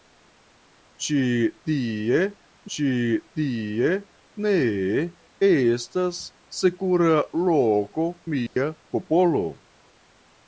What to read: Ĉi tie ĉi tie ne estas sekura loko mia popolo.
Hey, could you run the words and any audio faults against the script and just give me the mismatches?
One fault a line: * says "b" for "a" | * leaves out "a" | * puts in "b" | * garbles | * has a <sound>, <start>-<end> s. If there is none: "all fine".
* has a dropout, 8.5-8.6 s